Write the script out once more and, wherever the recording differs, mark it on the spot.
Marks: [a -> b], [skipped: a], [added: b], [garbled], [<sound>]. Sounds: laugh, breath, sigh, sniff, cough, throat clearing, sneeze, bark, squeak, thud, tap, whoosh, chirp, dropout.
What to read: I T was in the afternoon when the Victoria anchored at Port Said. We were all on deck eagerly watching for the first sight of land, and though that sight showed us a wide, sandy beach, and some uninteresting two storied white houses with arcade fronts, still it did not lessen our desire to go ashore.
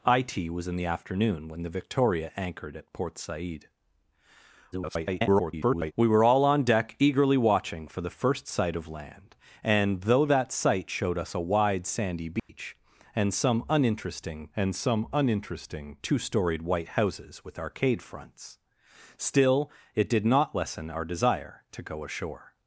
I T was in the afternoon when the Victoria anchored at Port Said. [garbled] We were all on deck eagerly watching for the first sight of land, and though that sight showed us a wide, sandy beach, [dropout] and some uninteresting [added: and some uninteresting] two storied white houses with arcade fronts, still it did not lessen our desire to go ashore.